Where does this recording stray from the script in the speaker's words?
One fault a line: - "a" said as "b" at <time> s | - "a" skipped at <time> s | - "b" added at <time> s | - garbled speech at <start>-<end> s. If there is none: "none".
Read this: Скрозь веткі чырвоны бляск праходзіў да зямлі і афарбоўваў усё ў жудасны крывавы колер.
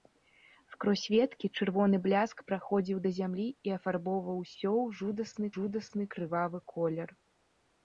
- "жудасны" added at 5.6 s